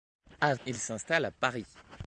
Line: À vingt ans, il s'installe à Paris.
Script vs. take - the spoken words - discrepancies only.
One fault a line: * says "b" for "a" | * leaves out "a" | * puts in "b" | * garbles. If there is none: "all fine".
* leaves out "vingt ans"